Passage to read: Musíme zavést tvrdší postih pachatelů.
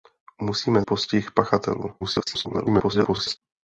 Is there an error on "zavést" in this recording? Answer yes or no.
yes